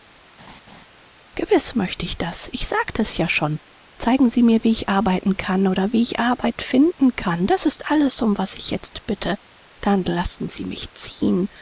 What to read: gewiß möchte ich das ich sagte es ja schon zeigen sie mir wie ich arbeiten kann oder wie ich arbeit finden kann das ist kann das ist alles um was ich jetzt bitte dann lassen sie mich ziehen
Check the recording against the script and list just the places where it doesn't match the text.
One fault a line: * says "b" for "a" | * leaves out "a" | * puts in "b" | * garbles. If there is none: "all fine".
* leaves out "kann das ist"